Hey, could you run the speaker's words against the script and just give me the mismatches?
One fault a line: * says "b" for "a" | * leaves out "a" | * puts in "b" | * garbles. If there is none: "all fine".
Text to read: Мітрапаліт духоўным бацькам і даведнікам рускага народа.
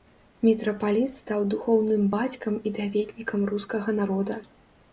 * puts in "стаў"